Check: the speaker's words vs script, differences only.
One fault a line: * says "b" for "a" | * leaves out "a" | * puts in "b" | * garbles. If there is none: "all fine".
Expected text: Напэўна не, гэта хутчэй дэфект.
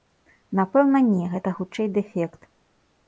all fine